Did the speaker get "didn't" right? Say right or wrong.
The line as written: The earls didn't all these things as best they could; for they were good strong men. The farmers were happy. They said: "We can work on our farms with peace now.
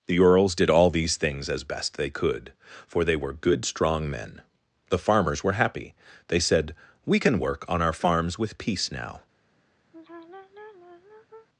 wrong